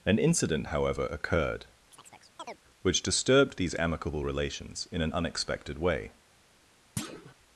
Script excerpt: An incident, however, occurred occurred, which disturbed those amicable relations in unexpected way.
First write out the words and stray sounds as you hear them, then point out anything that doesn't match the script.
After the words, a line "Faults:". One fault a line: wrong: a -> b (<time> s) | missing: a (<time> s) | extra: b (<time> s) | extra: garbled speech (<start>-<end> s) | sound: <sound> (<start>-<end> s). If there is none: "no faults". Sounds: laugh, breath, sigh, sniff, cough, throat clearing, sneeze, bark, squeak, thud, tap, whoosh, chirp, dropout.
An incident, however, occurred, which disturbed these amicable relations in an unexpected way.
Faults:
missing: occurred (1.7 s)
sound: chirp (1.9-2.6 s)
wrong: those -> these (3.6 s)
extra: an (5.0 s)
sound: thud (7.0-7.3 s)